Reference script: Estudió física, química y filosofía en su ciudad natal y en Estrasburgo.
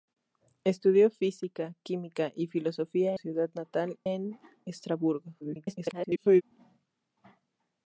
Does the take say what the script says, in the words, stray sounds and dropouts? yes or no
no